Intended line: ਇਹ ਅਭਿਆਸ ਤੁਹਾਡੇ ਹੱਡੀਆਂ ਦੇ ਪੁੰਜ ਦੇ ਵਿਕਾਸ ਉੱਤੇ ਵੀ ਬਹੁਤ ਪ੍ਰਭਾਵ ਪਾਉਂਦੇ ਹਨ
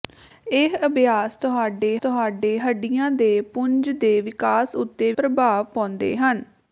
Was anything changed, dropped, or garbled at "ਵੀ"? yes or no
yes